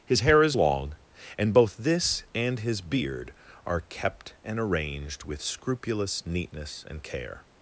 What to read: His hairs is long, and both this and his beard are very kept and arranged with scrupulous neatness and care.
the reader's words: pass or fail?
fail